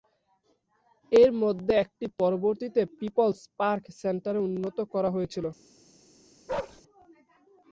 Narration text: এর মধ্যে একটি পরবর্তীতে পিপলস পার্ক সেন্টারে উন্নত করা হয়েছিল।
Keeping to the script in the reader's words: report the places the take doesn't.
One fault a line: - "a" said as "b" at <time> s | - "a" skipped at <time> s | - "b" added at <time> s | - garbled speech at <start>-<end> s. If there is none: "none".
none